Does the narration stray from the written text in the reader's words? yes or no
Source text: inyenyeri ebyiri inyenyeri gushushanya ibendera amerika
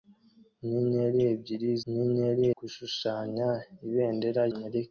no